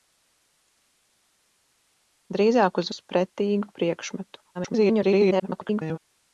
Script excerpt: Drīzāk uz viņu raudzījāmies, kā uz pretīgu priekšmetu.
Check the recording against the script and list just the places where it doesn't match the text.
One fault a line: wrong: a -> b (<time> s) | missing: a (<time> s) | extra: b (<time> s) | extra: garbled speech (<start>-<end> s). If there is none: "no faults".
missing: viņu raudzījāmies kā (2.9 s)
extra: garbled speech (4.5-6.0 s)